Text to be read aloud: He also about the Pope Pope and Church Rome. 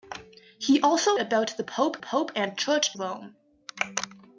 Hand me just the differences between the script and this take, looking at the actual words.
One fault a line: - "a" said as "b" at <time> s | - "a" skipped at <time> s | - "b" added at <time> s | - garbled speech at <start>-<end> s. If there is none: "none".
none